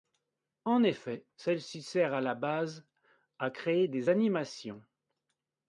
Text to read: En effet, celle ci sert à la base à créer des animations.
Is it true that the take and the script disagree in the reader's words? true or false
false